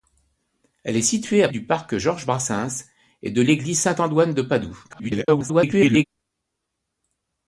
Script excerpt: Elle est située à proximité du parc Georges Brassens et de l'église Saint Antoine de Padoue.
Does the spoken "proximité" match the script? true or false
false